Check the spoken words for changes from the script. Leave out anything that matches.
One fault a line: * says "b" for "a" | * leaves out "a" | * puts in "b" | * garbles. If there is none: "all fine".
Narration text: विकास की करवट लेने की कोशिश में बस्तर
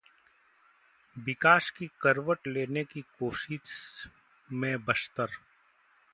all fine